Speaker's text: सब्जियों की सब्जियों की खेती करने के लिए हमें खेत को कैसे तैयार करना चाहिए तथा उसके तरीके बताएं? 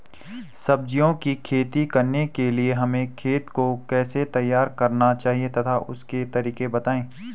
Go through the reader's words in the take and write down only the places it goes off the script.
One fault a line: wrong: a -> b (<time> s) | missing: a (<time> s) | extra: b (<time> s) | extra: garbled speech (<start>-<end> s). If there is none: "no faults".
missing: सब्जियों की (1.3 s)